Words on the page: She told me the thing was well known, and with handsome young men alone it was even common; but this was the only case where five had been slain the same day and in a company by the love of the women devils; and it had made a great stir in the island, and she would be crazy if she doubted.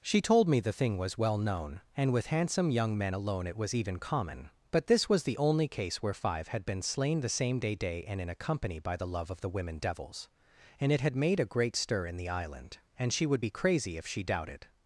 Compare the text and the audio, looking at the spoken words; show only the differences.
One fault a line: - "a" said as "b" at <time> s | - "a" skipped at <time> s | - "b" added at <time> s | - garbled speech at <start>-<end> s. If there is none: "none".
- "day" added at 7.7 s